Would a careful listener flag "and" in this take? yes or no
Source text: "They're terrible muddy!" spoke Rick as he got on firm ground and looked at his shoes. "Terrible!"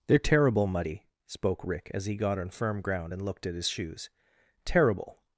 no